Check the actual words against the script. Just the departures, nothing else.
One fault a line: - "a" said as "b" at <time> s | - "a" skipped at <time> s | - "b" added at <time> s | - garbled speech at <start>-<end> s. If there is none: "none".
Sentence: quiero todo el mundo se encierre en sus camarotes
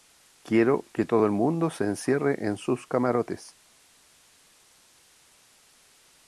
- "que" added at 0.9 s